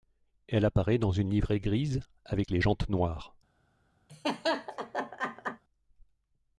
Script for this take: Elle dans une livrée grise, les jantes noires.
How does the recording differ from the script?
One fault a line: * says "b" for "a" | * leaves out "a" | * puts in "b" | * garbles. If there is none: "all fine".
* puts in "apparaît"
* puts in "avec"